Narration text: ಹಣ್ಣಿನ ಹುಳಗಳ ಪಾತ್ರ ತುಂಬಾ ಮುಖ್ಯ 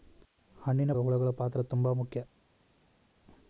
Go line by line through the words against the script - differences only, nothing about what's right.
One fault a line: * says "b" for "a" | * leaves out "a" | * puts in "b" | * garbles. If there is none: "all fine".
all fine